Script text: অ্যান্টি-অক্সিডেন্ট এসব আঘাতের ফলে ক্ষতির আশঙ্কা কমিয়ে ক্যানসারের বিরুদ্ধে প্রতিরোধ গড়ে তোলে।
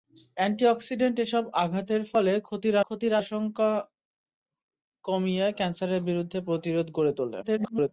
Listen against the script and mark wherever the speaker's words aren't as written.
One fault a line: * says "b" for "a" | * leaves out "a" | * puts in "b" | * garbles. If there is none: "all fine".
* puts in "ক্ষতির"
* garbles